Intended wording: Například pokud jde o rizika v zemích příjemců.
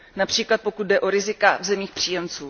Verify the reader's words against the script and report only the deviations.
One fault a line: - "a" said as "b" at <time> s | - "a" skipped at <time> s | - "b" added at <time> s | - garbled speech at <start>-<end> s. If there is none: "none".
none